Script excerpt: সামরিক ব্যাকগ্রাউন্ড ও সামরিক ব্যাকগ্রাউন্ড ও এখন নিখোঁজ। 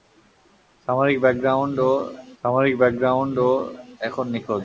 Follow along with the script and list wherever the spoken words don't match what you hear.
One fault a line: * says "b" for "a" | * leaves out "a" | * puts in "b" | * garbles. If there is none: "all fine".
all fine